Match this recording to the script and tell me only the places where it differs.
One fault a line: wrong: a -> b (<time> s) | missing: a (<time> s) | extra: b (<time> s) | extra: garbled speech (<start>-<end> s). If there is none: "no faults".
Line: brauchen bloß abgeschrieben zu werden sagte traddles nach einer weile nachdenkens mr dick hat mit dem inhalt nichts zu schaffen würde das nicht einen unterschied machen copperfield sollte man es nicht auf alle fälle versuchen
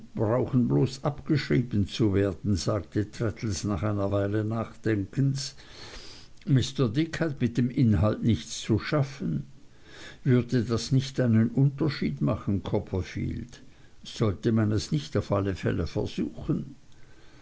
no faults